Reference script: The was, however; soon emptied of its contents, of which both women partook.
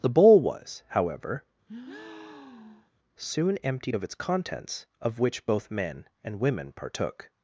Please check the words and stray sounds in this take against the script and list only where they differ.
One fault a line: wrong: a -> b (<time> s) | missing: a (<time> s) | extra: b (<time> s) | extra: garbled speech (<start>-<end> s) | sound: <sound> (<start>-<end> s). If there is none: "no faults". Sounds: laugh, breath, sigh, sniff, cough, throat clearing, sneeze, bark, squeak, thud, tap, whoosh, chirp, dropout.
extra: bowl (0.1 s)
sound: breath (1.7-2.9 s)
extra: men and (5.7 s)